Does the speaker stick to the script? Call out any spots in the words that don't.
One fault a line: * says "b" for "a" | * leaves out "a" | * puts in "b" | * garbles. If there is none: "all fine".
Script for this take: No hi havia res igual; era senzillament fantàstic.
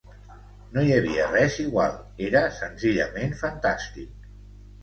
all fine